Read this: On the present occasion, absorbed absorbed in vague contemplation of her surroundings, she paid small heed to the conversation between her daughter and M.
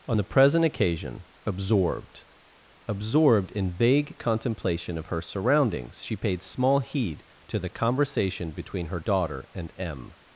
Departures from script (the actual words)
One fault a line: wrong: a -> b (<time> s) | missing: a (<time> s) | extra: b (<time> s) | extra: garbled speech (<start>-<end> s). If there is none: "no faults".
no faults